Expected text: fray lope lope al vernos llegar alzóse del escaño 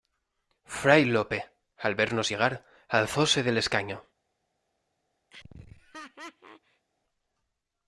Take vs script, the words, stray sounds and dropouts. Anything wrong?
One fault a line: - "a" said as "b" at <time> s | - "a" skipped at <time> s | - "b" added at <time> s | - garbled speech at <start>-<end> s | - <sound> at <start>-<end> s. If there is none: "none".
- "lope" skipped at 1.5 s
- laugh at 5.3-6.9 s